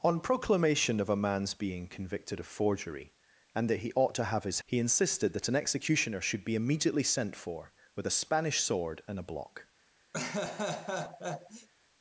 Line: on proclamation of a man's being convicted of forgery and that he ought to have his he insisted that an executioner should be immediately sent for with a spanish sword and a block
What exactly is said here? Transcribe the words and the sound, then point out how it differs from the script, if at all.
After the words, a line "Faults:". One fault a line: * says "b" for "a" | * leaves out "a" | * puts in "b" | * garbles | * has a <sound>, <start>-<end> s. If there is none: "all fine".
on proclamation of a man's being convicted of forgery and that he ought to have his he insisted that an executioner should be immediately sent for with a spanish sword and a block
Faults:
* has a laugh, 10.1-11.7 s